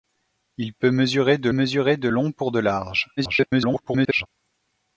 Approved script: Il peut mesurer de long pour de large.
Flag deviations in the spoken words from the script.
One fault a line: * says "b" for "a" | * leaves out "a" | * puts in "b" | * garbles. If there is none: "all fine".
* puts in "mesurer de"
* garbles